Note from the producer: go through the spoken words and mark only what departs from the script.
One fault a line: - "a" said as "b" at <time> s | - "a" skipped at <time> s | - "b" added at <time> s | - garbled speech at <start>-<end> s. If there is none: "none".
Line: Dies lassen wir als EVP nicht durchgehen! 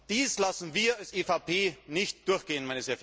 none